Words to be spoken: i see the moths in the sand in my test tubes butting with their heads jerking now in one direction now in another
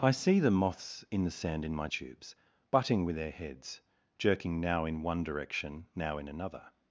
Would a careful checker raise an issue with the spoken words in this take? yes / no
yes